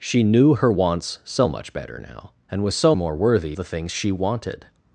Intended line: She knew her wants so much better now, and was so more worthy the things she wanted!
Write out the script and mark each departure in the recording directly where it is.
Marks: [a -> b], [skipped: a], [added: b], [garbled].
She knew her wants so much better now, and was so more worthy the things she wanted!